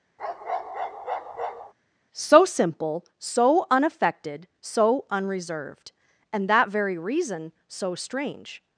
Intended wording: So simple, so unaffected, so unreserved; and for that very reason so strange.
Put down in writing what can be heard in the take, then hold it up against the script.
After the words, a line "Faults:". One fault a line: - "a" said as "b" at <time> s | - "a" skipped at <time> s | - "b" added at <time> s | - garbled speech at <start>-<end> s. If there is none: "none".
So simple, so unaffected, so unreserved; and that very reason so strange.
Faults:
- "for" skipped at 6.5 s